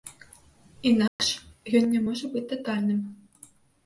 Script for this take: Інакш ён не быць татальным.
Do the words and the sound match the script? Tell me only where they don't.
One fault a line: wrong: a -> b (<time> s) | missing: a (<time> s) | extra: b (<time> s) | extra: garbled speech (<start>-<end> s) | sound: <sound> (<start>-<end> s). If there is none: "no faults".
sound: dropout (1.1-1.2 s)
extra: можа (2.0 s)